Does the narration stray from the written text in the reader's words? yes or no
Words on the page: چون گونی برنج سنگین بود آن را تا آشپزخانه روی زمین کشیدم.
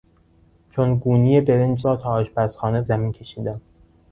yes